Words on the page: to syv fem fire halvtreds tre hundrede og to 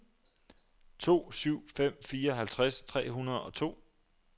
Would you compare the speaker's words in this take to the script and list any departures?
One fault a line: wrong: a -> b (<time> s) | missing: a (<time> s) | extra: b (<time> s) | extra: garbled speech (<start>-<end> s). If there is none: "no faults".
no faults